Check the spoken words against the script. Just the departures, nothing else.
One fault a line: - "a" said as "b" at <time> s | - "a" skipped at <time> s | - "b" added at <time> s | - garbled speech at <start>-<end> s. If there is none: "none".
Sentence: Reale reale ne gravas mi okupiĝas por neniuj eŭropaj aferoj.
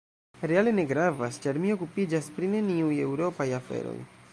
- "reale" skipped at 0.7 s
- "ĉar" added at 1.5 s
- "por" said as "pri" at 2.4 s